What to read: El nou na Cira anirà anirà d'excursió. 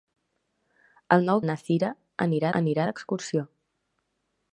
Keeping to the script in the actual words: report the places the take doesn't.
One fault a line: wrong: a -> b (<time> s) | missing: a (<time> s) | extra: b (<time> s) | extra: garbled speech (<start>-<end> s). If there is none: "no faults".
no faults